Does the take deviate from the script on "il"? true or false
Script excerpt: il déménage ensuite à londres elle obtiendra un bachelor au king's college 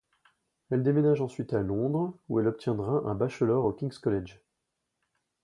true